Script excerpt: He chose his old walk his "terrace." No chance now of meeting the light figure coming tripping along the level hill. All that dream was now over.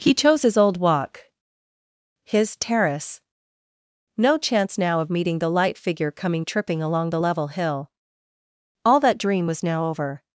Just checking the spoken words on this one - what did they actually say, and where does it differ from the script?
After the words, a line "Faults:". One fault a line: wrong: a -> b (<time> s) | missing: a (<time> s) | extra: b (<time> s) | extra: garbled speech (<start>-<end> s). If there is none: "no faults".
He chose his old walk his "terrace." No chance now of meeting the light figure coming tripping along the level hill. All that dream was now over.
Faults:
no faults